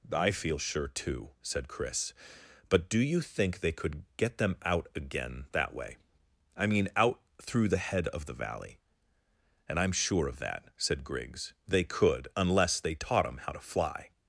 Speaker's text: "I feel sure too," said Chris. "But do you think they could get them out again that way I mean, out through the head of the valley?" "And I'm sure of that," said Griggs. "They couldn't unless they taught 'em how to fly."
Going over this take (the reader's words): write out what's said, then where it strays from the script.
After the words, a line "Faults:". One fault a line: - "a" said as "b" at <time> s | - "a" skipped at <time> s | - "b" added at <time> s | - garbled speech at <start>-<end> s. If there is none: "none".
"I feel sure too," said Chris. "But do you think they could get them out again that way I mean, out through the head of the valley?" "And I'm sure of that," said Griggs. "They could unless they taught 'em how to fly."
Faults:
- "couldn't" said as "could" at 11.8 s